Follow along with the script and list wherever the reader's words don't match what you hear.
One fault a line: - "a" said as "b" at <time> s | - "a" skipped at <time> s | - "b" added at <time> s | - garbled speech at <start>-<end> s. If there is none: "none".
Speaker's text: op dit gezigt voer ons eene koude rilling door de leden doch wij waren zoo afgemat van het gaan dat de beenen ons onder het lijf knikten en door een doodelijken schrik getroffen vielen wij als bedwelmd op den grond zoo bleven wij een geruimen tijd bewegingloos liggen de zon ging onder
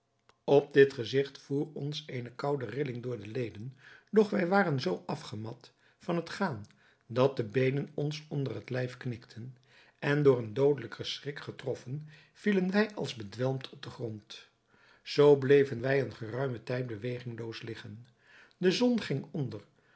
none